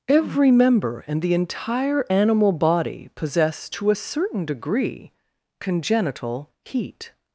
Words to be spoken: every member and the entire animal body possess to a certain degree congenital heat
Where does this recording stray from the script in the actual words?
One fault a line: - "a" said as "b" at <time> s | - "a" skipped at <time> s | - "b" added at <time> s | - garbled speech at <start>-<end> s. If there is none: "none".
none